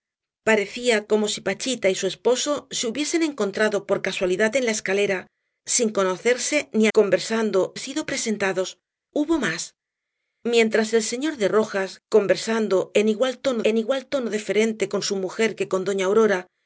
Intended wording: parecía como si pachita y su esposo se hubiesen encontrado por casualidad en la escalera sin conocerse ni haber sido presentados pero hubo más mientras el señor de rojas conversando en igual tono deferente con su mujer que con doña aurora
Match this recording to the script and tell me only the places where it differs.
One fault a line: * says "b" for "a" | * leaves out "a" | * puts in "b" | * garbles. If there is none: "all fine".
* says "conversando" for "haber"
* leaves out "pero"
* puts in "en igual tono"